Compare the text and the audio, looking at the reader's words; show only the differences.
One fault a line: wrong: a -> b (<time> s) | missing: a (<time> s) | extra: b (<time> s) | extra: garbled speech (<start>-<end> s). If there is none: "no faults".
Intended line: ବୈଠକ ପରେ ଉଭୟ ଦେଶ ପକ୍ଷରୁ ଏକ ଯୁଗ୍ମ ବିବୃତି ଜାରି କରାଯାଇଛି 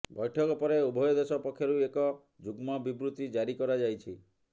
no faults